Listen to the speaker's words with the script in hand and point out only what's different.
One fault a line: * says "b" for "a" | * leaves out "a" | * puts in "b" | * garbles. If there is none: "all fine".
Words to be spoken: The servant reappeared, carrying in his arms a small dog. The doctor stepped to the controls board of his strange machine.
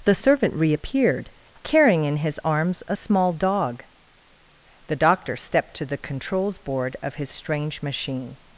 all fine